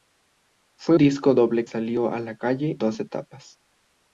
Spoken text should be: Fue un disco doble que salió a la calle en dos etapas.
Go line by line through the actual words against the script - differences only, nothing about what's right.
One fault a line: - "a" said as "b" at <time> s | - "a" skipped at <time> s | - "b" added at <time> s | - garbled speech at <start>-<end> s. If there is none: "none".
- "un" skipped at 1.0 s
- "que" skipped at 1.6 s
- "en" skipped at 2.8 s